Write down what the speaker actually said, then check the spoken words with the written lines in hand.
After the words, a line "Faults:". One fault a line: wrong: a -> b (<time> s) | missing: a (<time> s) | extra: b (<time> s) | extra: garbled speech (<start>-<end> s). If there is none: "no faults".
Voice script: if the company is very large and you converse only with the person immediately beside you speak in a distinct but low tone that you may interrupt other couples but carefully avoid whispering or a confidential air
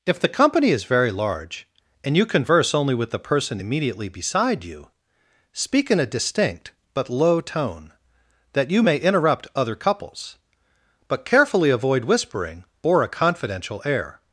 if the company is very large and you converse only with the person immediately beside you speak in a distinct but low tone that you may interrupt other couples but carefully avoid whispering or a confidential air
Faults:
no faults